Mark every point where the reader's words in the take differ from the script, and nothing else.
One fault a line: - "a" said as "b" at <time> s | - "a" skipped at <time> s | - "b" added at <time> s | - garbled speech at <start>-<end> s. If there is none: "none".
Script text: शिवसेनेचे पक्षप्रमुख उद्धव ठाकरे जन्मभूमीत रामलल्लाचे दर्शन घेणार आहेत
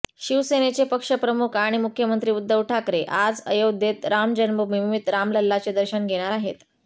- "आणि मुख्यमंत्री" added at 1.6 s
- "आज अयोध्येत राम" added at 3.2 s